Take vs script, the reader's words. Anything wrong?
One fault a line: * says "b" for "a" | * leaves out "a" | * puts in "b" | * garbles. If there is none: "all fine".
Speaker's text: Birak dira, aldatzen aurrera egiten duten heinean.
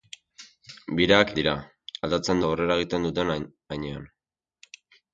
all fine